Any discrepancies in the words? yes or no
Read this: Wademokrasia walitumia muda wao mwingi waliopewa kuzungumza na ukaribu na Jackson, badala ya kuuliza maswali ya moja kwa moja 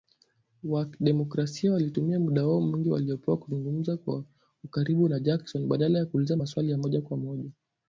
yes